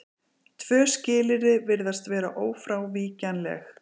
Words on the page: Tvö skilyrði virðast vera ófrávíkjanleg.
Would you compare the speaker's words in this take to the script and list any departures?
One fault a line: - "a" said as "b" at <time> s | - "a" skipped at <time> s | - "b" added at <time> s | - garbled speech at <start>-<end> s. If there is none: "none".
none